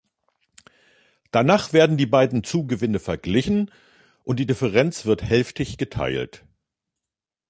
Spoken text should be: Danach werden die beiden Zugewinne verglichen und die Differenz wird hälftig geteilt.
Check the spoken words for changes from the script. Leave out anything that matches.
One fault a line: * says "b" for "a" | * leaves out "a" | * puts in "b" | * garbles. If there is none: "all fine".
all fine